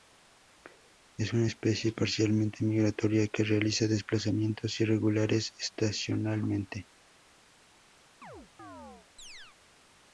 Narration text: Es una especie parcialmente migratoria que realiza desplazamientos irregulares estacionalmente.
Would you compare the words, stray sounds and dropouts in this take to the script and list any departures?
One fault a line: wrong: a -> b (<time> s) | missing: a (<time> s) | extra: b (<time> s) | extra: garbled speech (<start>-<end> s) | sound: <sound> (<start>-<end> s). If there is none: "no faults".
sound: chirp (8.2-9.6 s)